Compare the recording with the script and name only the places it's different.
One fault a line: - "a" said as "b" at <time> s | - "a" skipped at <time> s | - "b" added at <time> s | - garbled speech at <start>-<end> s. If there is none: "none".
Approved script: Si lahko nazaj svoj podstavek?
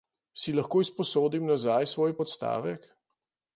- "izposodim" added at 0.8 s